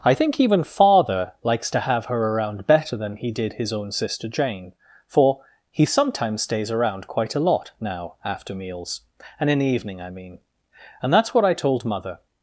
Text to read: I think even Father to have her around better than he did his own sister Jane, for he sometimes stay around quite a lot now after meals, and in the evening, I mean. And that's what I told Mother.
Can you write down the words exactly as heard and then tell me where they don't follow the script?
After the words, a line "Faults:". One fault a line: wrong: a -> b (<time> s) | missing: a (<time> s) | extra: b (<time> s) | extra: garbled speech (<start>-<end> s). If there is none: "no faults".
I think even Father likes to have her around better than he did his own sister Jane, for he sometimes stays around quite a lot now after meals, and in the evening, I mean. And that's what I told Mother.
Faults:
extra: likes (1.4 s)
wrong: stay -> stays (6.4 s)